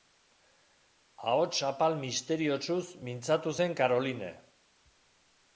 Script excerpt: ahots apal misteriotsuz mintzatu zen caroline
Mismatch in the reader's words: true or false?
false